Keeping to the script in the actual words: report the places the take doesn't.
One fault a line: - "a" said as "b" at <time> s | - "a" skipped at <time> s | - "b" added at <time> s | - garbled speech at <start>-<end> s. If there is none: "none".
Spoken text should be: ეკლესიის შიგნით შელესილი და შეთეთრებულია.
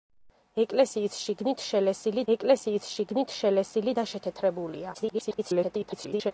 - "ეკლესიის შიგნით შელესილი" added at 2.3 s
- garbled speech at 4.9-6.3 s